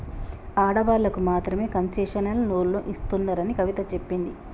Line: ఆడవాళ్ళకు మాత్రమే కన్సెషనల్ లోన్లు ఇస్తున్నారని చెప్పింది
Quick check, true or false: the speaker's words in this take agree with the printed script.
false